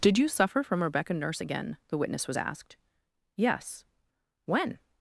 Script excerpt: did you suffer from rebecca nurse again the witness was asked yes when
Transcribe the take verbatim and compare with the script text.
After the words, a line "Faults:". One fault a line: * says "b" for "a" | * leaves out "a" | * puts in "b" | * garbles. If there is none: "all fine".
did you suffer from rebecca nurse again the witness was asked yes when
Faults:
all fine